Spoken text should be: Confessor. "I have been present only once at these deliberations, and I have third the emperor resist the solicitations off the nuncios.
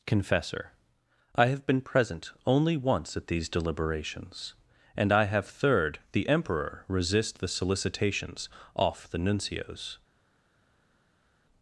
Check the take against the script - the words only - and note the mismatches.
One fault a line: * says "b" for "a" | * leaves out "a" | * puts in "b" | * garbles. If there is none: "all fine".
all fine